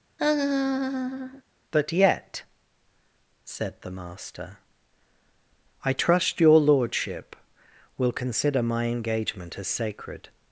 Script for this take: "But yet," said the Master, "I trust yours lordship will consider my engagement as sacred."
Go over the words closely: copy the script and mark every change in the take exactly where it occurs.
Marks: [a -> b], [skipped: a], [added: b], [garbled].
"But yet," said the Master, "I trust [yours -> your] lordship will consider my engagement as sacred."